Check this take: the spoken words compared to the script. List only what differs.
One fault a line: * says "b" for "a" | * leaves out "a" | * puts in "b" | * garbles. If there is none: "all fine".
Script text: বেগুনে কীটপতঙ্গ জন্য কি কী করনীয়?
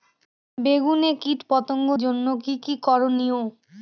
all fine